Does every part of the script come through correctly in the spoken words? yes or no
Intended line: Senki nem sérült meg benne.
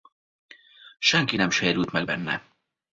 yes